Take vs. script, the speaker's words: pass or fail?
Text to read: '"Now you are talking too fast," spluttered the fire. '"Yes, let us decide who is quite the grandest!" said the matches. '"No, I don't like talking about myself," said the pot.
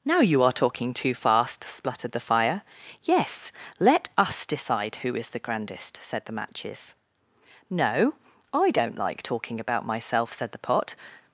fail